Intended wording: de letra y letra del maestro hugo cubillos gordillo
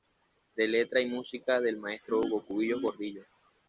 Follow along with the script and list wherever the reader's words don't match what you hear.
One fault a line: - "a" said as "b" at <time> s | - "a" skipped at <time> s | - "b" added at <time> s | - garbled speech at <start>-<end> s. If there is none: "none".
- "letra" said as "música" at 1.1 s